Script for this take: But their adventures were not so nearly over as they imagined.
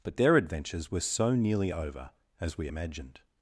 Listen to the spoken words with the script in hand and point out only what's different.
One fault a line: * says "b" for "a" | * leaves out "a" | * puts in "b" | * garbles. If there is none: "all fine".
* leaves out "not"
* says "we" for "they"